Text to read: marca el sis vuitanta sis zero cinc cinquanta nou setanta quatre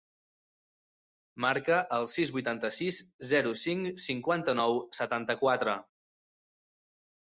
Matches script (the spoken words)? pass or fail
pass